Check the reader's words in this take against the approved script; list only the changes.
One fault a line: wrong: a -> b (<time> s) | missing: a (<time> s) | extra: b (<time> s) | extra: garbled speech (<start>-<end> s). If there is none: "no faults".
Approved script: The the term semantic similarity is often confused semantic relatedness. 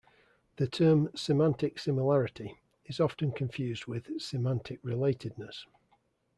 missing: the (0.7 s)
extra: with (3.9 s)